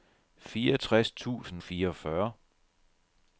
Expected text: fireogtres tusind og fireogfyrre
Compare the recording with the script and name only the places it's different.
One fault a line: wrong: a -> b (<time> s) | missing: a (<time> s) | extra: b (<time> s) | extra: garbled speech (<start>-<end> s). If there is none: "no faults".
missing: og (1.6 s)